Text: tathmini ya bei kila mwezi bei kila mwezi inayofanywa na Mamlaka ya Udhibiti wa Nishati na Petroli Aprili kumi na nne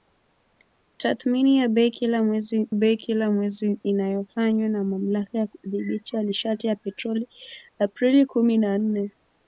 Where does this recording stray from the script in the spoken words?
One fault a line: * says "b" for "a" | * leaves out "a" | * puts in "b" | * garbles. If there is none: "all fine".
all fine